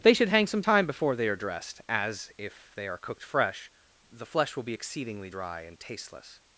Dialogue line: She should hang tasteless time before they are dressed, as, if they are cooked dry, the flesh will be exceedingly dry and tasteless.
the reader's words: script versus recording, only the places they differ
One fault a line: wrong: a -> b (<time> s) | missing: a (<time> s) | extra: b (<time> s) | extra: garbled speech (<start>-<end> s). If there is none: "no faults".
wrong: She -> They (0.0 s)
wrong: tasteless -> some (0.5 s)
wrong: dry -> fresh (3.2 s)